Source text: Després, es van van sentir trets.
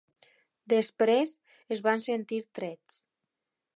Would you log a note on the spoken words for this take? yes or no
yes